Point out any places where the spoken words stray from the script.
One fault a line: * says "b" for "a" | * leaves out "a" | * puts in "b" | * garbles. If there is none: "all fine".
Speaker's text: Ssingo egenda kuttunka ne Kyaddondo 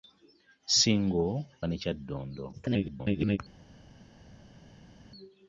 * leaves out "egenda kuttunka"
* garbles